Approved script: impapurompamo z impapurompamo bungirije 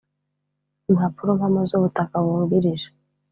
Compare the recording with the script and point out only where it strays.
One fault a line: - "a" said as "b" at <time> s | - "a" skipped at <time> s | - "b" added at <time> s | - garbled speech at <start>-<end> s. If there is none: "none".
- "impapurompamo" said as "ubutaka" at 1.8 s